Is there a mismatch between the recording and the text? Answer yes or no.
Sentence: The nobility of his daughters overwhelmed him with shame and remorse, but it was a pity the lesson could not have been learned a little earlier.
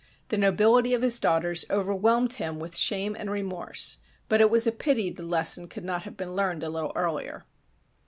no